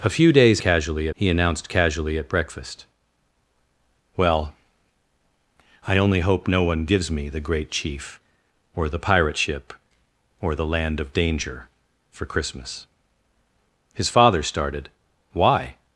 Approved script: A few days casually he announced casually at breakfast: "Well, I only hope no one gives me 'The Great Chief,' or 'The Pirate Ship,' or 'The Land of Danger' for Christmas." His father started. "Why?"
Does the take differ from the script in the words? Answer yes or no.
no